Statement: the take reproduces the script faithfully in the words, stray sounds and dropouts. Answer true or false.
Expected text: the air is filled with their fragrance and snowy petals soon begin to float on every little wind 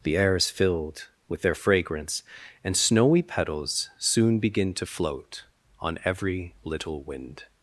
true